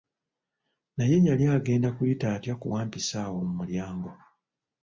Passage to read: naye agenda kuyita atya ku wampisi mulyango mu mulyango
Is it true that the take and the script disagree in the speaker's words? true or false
true